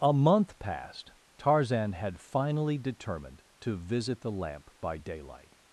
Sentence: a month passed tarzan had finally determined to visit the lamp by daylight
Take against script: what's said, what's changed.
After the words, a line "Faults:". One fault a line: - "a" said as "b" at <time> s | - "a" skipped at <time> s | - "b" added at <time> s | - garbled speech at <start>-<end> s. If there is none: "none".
a month passed tarzan had finally determined to visit the lamp by daylight
Faults:
none